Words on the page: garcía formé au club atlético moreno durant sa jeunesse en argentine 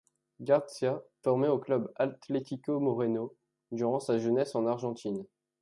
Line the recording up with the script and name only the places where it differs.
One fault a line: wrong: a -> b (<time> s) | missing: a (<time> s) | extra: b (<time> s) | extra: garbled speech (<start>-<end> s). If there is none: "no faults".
no faults